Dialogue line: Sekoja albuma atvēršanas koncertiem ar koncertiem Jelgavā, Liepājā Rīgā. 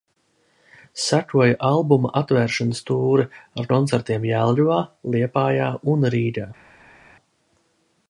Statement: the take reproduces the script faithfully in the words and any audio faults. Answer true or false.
false